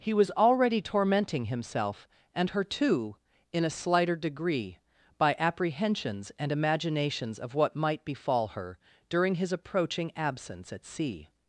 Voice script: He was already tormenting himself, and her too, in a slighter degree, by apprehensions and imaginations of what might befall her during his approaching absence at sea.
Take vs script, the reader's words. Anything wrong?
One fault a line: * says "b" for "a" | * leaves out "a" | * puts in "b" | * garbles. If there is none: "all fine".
all fine